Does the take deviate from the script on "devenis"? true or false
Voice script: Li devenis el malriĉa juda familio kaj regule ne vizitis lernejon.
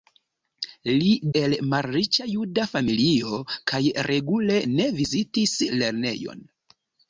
true